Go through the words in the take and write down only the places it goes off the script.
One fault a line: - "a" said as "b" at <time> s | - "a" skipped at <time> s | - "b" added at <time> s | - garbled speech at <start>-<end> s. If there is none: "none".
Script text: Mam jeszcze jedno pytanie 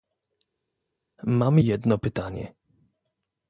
- "jeszcze" skipped at 1.6 s